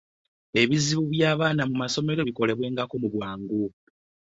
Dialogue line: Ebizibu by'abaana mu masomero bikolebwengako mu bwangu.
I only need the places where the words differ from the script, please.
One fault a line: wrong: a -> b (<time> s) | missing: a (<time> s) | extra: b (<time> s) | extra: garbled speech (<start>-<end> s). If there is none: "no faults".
no faults